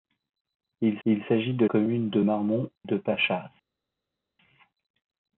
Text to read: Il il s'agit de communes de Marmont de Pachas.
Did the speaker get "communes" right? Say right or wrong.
right